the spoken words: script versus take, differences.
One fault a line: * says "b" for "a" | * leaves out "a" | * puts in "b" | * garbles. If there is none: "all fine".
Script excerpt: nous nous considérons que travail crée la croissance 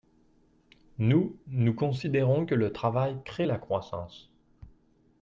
* puts in "le"